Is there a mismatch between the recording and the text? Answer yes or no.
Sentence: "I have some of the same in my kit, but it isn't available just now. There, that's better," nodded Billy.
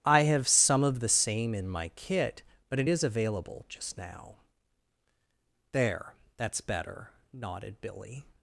yes